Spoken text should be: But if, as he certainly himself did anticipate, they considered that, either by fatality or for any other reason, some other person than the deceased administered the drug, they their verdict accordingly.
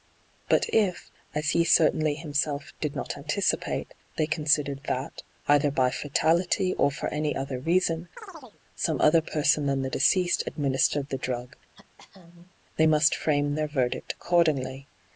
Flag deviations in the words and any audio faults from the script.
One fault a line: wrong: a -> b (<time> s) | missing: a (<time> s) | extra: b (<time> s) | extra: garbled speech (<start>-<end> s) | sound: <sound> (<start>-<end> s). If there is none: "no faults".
extra: not (2.9 s)
sound: chirp (8.2-8.6 s)
sound: throat clearing (11.7-12.5 s)
extra: must frame (12.8 s)